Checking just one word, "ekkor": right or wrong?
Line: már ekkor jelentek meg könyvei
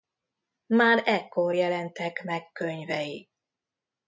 right